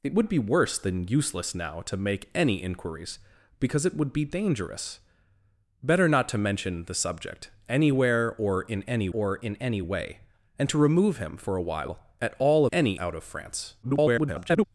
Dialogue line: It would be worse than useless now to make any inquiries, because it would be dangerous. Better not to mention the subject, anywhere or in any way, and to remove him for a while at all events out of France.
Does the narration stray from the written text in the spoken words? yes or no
yes